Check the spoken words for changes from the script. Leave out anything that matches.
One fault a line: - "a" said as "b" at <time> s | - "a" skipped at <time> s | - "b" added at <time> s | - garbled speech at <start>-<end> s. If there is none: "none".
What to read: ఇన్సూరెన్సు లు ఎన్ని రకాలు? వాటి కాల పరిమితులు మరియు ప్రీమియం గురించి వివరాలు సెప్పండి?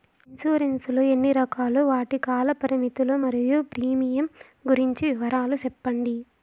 none